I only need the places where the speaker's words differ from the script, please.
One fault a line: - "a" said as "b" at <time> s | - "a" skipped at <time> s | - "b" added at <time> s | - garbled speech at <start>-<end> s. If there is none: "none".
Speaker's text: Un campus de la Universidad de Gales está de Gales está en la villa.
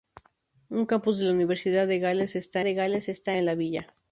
none